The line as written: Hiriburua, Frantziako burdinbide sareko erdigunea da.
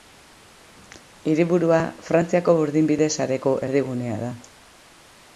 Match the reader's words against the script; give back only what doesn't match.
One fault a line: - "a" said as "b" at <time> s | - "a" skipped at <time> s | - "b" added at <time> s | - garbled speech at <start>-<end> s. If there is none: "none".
none